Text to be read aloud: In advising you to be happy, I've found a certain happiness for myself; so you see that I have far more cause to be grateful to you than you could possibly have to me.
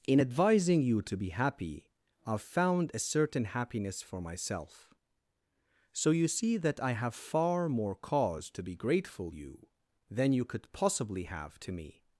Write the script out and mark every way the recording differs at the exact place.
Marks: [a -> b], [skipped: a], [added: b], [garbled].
In advising you to be happy, I've found a certain happiness for myself; so you see that I have far more cause to be grateful [skipped: to] you than you could possibly have to me.